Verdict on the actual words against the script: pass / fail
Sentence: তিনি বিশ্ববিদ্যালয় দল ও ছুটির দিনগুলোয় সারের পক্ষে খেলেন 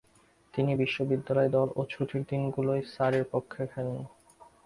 pass